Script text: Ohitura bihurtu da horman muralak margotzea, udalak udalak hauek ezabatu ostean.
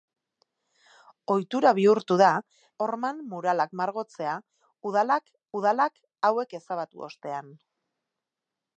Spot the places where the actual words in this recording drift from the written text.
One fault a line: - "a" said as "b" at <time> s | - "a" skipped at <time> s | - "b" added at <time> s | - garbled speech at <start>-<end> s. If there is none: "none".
none